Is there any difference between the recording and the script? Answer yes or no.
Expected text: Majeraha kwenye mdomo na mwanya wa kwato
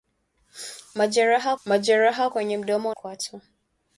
yes